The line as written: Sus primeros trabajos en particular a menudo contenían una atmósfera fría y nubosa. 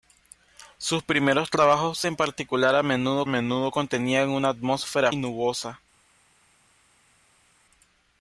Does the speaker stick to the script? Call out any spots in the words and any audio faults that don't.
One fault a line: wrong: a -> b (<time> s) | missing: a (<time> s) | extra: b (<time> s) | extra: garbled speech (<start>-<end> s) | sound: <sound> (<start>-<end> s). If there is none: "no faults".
extra: menudo (3.3 s)
missing: fría (5.1 s)